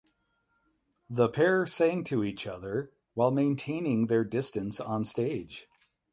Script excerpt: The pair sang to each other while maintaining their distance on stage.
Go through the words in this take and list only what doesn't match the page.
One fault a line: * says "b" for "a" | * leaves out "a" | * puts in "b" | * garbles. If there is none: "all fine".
all fine